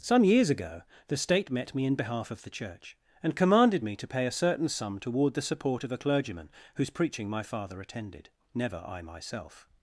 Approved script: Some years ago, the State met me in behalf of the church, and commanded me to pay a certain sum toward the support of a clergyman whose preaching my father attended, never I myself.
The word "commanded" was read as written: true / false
true